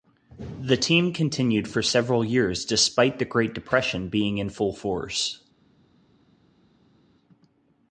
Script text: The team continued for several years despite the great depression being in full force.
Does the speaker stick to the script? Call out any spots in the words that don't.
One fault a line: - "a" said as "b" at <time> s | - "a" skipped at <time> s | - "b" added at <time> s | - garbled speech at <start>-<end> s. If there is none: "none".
none